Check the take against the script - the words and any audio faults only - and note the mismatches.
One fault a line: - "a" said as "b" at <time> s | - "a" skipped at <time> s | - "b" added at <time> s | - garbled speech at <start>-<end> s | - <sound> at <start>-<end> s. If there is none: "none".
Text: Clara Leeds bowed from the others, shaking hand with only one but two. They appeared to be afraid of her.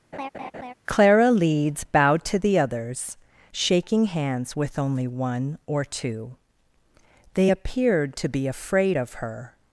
- laugh at 0.1-0.7 s
- "from" said as "to" at 2.3 s
- "hand" said as "hands" at 4.1 s
- "but" said as "or" at 5.7 s